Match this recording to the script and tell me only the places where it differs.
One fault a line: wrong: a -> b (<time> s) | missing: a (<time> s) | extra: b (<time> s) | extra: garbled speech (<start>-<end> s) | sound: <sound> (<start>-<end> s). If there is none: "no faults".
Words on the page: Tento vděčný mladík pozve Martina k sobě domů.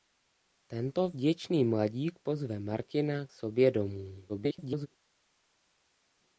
missing: k (3.3 s)
extra: garbled speech (4.3-4.9 s)